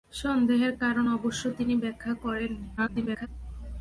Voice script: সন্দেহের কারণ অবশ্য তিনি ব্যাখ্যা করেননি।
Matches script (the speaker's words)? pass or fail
fail